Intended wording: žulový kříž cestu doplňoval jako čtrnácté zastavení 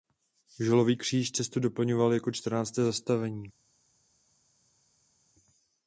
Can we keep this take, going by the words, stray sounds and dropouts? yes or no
yes